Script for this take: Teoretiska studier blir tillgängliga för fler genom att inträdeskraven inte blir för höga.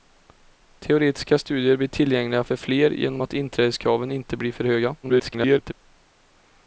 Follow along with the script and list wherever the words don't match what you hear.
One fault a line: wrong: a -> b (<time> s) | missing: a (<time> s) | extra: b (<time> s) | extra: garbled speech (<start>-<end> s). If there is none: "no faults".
extra: garbled speech (5.0-5.7 s)